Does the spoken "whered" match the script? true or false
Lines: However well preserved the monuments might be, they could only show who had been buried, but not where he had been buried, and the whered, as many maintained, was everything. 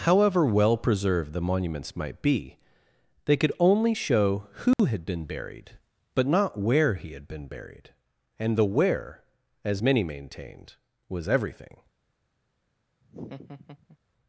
false